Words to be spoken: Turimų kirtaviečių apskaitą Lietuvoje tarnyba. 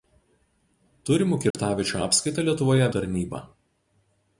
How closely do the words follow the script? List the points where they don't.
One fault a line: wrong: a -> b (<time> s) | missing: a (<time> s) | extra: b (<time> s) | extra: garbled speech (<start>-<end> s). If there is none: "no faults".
no faults